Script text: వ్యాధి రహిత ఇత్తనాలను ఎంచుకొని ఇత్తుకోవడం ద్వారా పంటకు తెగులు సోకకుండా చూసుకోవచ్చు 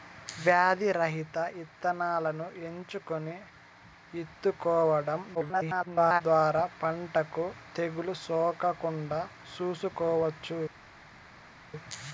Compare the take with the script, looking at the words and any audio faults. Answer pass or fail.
fail